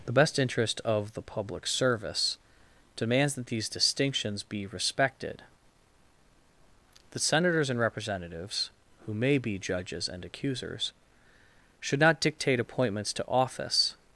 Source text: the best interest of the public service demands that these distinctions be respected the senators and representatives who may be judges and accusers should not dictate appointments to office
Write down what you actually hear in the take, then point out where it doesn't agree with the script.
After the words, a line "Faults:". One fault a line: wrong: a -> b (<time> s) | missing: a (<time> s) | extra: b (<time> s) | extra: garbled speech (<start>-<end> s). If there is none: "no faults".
the best interest of the public service demands that these distinctions be respected the senators and representatives who may be judges and accusers should not dictate appointments to office
Faults:
no faults